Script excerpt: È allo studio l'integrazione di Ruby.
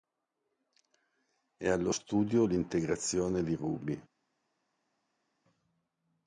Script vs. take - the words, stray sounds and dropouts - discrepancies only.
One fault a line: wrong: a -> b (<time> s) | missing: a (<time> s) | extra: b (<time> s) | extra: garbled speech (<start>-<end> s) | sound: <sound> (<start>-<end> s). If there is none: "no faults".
no faults